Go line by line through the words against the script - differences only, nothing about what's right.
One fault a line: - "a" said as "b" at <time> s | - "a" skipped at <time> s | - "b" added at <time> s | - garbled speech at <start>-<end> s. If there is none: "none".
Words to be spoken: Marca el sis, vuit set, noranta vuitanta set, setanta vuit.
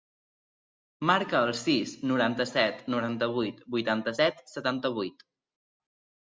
- "vuit" said as "noranta" at 2.1 s
- "vuit" added at 3.4 s